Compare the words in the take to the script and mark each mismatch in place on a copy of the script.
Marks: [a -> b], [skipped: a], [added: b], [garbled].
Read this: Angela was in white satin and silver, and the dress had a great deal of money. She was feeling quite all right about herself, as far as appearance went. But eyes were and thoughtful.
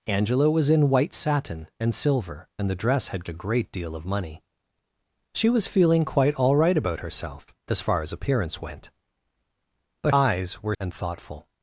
Angela was in white satin and silver, and the dress had a great deal of money. She was feeling quite all right about herself, as far as appearance went. But eyes were and thoughtful.